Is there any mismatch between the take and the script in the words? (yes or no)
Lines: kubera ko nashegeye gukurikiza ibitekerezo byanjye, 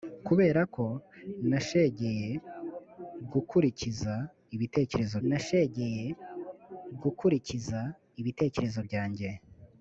yes